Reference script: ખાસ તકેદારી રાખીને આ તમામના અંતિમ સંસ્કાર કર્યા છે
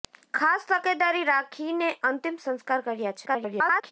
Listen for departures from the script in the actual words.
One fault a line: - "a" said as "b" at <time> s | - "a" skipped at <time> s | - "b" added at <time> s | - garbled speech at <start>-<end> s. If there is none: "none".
- "આ તમામના" skipped at 1.9 s
- garbled speech at 3.3-3.9 s